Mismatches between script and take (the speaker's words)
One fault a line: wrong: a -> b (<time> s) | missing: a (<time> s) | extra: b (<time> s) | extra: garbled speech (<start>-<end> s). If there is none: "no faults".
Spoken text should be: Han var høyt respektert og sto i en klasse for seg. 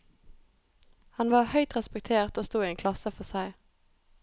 no faults